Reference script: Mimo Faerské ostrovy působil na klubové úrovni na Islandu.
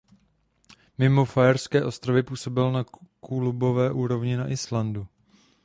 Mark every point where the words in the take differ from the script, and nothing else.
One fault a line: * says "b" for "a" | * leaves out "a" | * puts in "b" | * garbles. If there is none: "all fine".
all fine